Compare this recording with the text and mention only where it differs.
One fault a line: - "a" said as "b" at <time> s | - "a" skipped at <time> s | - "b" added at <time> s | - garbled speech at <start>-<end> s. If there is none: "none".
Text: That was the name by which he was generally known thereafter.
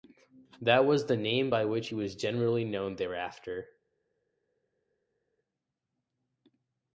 none